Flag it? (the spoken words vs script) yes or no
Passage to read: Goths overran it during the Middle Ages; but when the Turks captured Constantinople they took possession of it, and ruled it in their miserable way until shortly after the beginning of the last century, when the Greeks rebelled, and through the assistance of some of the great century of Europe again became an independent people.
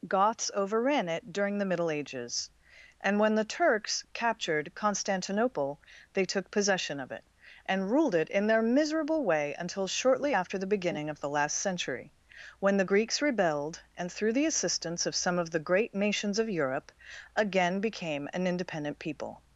yes